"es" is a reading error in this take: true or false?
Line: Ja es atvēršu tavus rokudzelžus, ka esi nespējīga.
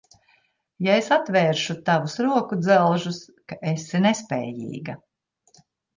false